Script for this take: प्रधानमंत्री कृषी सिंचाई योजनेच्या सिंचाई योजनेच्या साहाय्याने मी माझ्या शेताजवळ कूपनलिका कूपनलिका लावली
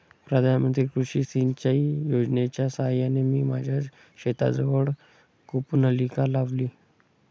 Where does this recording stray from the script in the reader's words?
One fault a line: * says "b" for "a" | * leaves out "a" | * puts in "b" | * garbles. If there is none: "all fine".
* leaves out "सिंचाई योजनेच्या"
* leaves out "कूपनलिका"